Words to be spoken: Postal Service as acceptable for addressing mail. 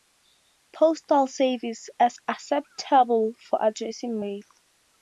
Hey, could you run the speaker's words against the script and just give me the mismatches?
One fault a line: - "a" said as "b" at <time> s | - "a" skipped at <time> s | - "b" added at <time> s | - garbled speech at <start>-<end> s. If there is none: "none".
none